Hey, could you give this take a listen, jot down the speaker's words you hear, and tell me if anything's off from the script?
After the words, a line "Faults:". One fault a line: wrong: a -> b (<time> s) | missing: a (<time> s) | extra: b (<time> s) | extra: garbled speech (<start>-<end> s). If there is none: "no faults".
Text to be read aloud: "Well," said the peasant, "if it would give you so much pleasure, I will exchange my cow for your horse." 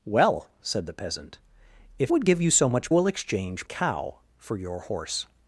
"Well," said the peasant, "if would give you so much will exchange cow for your horse."
Faults:
missing: it (2.1 s)
missing: pleasure I (2.9 s)
missing: my (3.7 s)